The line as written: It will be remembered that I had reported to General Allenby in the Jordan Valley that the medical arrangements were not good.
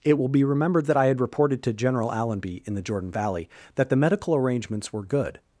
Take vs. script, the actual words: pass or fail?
fail